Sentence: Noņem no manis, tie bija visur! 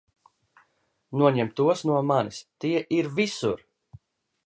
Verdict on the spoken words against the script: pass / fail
fail